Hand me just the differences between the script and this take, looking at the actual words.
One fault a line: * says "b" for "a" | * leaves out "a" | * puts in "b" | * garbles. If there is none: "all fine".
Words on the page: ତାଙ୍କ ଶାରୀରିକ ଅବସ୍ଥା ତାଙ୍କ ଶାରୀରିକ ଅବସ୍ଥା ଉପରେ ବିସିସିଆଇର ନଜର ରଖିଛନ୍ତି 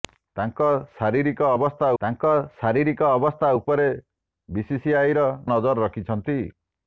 all fine